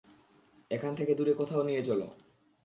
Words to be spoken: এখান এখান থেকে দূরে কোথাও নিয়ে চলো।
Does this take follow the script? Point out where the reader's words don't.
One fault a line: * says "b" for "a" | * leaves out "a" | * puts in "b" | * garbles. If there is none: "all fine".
* leaves out "এখান"